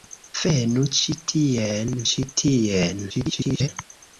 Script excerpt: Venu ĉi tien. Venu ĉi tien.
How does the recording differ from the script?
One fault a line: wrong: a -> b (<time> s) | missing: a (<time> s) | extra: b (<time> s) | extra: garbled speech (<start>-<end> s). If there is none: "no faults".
missing: Venu (1.9 s)
extra: garbled speech (3.1-3.7 s)